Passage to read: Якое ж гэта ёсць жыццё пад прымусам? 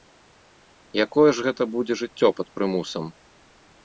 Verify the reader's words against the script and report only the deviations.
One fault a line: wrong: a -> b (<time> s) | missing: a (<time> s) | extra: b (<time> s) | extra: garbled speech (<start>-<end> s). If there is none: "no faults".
wrong: ёсць -> будзе (1.7 s)